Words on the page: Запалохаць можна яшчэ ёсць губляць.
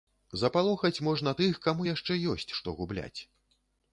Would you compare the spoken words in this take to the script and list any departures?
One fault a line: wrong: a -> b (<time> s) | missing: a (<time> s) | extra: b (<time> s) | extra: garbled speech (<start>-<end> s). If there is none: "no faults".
extra: тых каму (1.4 s)
extra: што (2.6 s)